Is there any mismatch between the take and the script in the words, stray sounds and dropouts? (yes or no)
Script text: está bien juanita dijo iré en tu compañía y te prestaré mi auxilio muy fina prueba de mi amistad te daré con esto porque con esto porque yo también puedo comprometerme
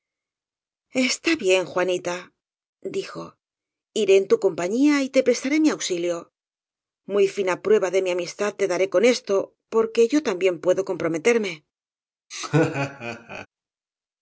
yes